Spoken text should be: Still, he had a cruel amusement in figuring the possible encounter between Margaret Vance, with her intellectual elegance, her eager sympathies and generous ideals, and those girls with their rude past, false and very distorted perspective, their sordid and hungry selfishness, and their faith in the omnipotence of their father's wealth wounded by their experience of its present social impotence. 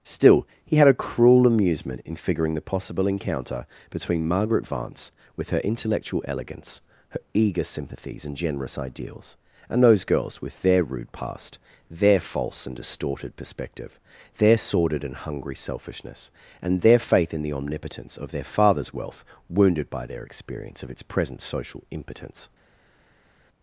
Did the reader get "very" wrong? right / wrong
wrong